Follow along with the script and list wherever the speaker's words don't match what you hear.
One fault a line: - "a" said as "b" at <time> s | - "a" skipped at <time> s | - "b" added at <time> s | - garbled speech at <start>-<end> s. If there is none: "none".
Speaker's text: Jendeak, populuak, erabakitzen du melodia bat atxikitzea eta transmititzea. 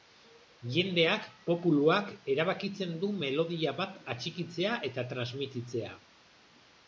none